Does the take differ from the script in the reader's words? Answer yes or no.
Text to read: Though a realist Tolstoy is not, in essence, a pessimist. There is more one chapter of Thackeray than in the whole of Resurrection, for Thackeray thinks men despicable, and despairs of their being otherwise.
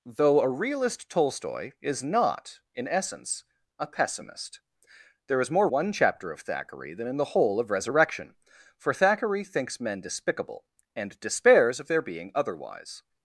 no